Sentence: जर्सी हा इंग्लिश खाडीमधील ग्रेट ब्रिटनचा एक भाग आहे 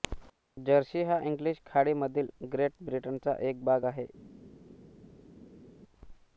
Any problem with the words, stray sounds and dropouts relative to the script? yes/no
no